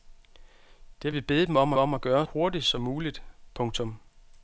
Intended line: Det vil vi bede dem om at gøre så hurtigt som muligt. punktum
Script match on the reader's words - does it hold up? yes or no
no